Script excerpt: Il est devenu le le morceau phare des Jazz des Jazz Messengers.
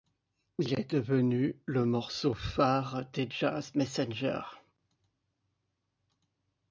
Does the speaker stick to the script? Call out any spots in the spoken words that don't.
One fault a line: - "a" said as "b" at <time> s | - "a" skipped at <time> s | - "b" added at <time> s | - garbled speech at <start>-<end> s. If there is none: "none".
- "le" skipped at 1.9 s
- "des Jazz" skipped at 3.7 s